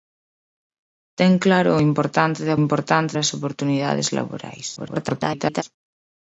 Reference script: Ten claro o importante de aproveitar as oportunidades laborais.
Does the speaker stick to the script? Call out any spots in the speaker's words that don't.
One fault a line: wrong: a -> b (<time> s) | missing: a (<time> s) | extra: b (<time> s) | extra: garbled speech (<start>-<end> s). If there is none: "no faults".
wrong: aproveitar -> importante (2.6 s)
extra: garbled speech (4.8-5.6 s)